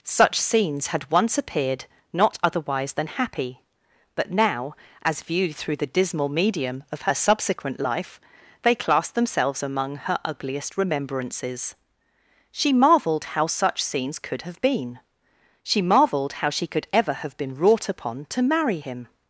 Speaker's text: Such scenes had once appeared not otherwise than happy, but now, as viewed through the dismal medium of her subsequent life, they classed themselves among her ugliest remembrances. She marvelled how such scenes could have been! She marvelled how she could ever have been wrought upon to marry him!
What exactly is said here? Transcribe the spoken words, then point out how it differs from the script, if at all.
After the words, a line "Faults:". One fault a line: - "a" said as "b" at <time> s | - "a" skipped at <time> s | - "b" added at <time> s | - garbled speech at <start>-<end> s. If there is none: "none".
Such scenes had once appeared not otherwise than happy, but now, as viewed through the dismal medium of her subsequent life, they classed themselves among her ugliest remembrances. She marvelled how such scenes could have been! She marvelled how she could ever have been wrought upon to marry him!
Faults:
none